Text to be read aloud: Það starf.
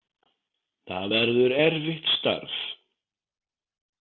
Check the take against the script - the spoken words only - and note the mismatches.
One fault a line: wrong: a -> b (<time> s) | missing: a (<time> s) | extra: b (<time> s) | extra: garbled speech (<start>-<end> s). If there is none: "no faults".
extra: verður erfitt (1.1 s)